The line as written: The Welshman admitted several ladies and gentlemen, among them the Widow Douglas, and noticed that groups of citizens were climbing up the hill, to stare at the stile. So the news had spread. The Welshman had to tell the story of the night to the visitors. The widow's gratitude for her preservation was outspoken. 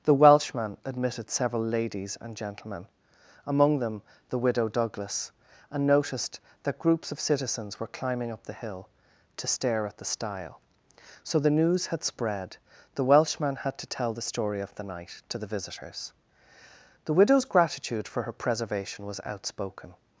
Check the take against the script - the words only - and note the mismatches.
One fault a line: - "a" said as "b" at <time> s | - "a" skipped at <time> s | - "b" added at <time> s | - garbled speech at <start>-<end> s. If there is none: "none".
none